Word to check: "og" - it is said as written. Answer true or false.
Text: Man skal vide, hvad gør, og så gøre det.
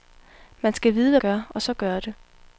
true